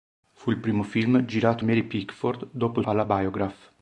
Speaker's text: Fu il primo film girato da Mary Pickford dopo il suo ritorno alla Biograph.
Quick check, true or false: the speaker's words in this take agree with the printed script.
false